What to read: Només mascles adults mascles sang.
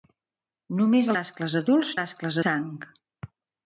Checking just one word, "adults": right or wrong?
right